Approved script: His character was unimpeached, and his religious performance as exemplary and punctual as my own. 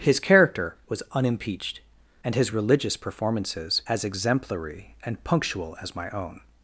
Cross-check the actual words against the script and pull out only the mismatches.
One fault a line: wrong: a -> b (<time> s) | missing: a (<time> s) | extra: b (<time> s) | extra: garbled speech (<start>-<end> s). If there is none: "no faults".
wrong: performance -> performances (3.0 s)